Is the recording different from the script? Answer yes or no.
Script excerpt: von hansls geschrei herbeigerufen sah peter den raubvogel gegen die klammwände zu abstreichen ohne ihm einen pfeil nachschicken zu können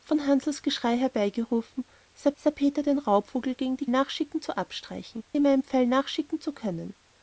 yes